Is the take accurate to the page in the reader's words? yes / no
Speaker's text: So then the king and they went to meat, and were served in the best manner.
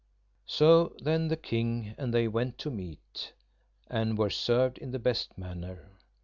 yes